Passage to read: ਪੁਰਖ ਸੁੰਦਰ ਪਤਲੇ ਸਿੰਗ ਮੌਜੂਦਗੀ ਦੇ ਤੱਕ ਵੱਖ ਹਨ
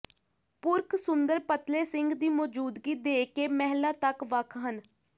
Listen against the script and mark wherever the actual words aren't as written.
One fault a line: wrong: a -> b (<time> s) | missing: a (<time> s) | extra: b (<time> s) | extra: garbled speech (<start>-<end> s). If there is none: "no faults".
extra: ਦੀ (2.1 s)
extra: ਕੇ ਮਹਿਲਾ (3.3 s)